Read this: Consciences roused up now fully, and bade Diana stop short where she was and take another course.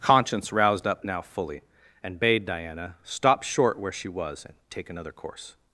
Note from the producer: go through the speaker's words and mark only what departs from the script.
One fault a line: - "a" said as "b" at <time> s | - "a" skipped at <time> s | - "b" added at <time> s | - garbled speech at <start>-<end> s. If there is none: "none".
- "Consciences" said as "Conscience" at 0.0 s